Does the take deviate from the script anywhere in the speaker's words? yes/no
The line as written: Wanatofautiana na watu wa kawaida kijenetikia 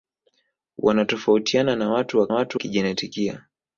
yes